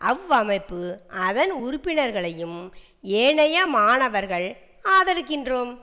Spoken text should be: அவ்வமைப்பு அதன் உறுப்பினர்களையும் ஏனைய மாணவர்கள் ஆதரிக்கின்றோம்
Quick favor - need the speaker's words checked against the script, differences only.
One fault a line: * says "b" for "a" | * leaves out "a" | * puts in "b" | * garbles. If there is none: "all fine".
all fine